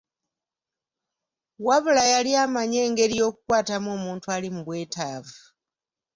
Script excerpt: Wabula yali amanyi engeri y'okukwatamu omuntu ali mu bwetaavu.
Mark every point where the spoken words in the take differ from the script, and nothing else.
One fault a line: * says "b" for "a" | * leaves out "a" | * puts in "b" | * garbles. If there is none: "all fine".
all fine